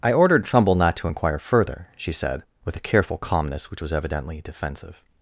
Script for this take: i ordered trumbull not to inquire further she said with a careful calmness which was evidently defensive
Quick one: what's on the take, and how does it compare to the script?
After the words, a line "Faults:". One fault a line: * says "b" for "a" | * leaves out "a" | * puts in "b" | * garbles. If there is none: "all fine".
i ordered trumbull not to inquire further she said with a careful calmness which was evidently defensive
Faults:
all fine